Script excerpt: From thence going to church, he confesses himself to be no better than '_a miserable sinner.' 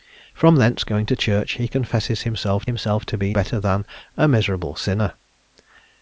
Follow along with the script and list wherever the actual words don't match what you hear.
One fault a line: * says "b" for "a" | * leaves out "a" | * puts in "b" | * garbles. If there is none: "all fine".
* puts in "himself"
* leaves out "no"